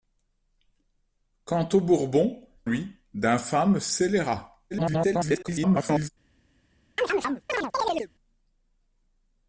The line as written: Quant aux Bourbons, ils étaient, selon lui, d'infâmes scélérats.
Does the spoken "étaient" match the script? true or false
false